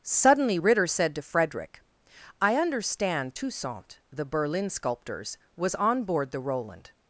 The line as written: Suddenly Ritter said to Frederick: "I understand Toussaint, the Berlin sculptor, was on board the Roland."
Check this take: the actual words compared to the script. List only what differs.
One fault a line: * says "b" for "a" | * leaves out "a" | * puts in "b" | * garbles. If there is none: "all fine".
* says "sculptors" for "sculptor"